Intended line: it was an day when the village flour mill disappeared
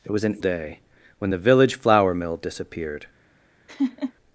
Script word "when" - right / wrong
right